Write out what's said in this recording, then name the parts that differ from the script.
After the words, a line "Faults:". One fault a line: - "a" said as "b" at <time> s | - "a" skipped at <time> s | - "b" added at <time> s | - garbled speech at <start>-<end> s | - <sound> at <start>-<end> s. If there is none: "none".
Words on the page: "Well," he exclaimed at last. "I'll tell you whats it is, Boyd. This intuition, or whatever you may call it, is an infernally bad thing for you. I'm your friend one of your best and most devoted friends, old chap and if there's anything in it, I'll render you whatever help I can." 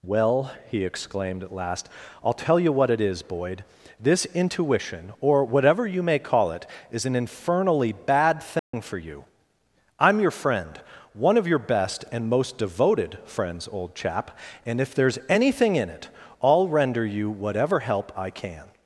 "Well," he exclaimed at last. "I'll tell you what it is, Boyd. This intuition, or whatever you may call it, is an infernally bad thing for you. I'm your friend one of your best and most devoted friends, old chap and if there's anything in it, I'll render you whatever help I can."
Faults:
- "whats" said as "what" at 2.7 s
- dropout at 8.6-8.7 s